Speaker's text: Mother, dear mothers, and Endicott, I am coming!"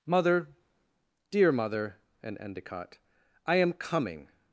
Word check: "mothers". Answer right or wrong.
wrong